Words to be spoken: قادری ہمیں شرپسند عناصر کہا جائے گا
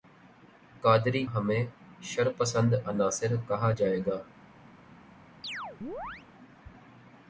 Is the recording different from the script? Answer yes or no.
no